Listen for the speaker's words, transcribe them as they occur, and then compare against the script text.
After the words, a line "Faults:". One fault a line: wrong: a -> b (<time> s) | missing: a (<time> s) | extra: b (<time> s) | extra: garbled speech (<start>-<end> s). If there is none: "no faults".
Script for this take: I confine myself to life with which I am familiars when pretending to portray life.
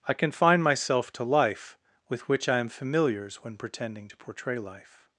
I confine myself to life with which I am familiars when pretending to portray life.
Faults:
no faults